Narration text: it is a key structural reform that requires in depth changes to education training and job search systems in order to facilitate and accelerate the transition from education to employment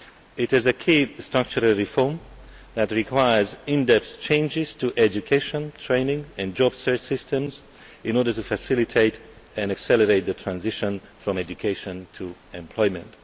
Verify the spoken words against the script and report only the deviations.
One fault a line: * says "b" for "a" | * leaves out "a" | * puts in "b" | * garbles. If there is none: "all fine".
all fine